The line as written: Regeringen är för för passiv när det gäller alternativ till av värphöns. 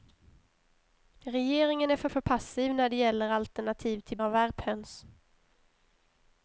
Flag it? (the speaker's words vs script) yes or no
no